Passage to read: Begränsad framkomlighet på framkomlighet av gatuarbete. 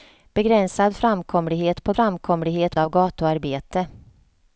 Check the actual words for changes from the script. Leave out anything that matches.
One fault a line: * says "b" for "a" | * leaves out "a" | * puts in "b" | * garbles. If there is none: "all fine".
all fine